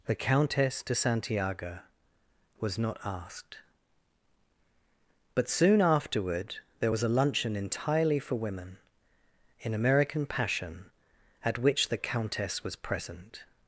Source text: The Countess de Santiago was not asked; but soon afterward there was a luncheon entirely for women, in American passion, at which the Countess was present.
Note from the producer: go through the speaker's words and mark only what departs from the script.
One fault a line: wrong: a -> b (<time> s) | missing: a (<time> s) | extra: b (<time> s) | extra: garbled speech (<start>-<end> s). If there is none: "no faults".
no faults